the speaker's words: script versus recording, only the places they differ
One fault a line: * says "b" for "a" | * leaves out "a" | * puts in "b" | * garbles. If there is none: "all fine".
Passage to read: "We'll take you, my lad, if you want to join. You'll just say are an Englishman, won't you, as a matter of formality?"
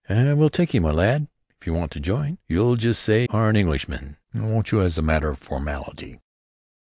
all fine